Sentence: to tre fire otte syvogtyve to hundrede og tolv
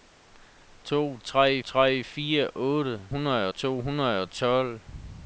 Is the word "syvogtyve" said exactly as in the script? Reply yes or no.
no